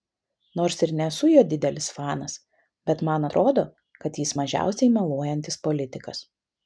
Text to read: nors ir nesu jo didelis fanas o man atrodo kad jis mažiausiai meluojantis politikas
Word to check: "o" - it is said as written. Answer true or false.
false